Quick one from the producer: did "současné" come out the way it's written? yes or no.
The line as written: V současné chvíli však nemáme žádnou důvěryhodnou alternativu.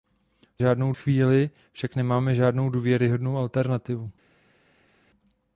no